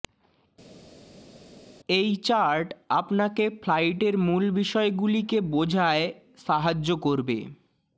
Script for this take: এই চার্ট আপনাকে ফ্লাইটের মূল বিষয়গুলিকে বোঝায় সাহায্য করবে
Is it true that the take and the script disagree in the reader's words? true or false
false